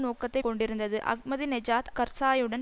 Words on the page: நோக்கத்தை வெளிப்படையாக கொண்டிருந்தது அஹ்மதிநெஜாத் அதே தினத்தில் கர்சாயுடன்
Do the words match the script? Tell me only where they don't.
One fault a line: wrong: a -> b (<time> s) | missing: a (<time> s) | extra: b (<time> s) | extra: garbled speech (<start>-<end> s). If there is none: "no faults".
missing: வெளிப்படையாக (0.4 s)
missing: அதே தினத்தில் (1.9 s)